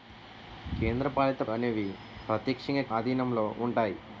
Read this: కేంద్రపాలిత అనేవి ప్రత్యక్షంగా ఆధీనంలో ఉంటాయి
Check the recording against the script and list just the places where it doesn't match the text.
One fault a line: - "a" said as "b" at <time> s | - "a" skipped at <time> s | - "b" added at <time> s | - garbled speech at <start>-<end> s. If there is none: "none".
none